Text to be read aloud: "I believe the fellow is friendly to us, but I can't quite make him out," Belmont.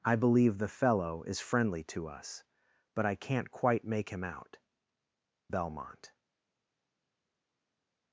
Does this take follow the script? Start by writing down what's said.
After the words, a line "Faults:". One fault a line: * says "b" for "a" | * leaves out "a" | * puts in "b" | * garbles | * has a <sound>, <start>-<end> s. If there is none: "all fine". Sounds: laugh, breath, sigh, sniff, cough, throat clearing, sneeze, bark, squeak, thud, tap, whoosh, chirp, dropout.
"I believe the fellow is friendly to us, but I can't quite make him out," Belmont.
Faults:
all fine